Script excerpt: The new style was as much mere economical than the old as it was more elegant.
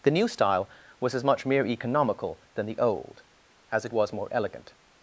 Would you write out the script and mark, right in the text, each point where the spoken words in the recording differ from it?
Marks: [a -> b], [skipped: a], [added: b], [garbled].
The new style was as much mere economical than the old as it was more elegant.